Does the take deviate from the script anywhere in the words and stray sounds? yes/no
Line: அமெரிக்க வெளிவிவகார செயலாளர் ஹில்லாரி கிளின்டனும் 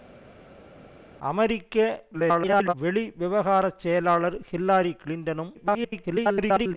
yes